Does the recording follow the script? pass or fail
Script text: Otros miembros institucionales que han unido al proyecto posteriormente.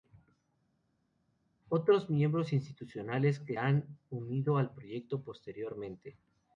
pass